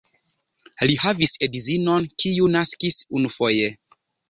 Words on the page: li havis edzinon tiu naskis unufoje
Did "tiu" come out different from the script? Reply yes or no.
yes